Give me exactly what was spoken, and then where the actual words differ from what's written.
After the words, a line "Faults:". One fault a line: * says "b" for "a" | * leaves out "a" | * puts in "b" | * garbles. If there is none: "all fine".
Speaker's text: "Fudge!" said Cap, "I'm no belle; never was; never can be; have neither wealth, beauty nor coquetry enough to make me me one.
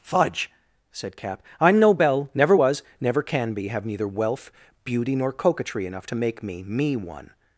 "Fudge!" said Cap, "I'm no belle; never was; never can be; have neither wealth, beauty nor coquetry enough to make me me one.
Faults:
all fine